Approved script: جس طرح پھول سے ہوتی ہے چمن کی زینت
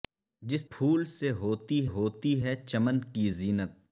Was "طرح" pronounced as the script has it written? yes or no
no